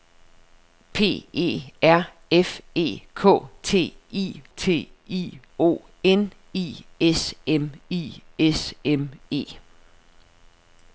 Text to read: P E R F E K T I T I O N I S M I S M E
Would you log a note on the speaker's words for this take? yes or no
no